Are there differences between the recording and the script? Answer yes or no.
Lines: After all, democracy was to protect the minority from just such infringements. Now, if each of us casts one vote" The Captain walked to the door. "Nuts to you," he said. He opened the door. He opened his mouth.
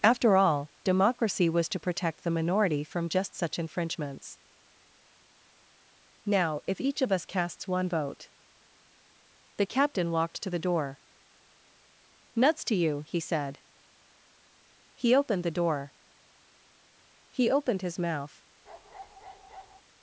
no